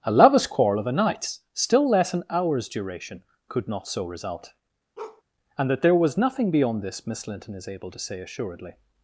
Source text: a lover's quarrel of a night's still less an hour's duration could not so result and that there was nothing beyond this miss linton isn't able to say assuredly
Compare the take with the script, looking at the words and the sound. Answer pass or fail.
fail